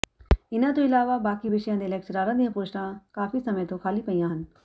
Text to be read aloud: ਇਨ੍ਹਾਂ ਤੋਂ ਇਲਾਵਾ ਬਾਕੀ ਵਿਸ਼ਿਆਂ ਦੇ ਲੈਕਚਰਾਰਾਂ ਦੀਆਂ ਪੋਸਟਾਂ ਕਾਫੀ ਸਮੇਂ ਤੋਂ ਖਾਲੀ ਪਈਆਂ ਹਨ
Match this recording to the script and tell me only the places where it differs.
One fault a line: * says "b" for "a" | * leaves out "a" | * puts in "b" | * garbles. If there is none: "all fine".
all fine